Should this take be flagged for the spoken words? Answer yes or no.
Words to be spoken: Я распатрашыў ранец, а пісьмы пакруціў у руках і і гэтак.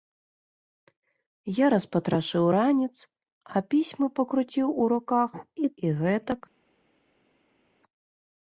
no